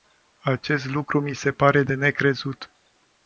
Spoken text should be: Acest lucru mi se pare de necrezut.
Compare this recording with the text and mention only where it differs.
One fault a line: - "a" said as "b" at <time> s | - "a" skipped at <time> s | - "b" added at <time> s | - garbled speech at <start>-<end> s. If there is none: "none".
none